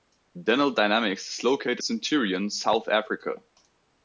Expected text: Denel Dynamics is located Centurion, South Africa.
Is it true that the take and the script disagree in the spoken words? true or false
false